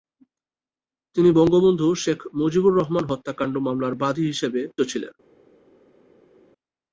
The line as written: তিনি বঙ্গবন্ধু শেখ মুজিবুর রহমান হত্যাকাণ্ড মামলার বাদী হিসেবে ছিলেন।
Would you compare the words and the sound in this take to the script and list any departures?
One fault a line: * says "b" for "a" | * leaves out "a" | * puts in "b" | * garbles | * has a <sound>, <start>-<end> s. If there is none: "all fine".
all fine